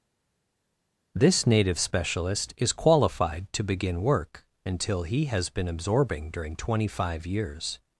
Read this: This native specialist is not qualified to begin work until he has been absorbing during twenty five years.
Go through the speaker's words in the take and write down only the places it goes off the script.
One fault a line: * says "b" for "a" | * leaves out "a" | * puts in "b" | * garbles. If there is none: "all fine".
* leaves out "not"